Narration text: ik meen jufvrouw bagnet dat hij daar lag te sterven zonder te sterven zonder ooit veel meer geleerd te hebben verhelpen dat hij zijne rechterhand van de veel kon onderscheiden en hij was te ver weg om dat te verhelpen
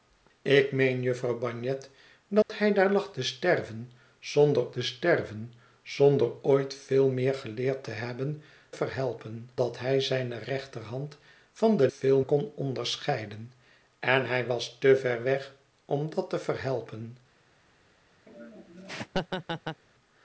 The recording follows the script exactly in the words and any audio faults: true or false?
false